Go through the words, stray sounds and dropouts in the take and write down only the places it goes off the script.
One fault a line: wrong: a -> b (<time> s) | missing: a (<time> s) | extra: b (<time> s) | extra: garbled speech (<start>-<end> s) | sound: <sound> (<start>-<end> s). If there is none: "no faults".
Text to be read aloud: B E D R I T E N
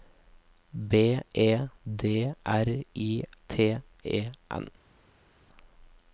no faults